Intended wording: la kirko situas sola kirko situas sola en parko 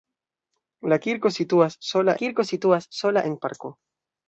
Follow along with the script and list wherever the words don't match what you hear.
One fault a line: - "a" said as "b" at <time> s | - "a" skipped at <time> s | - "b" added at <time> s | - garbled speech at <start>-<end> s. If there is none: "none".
none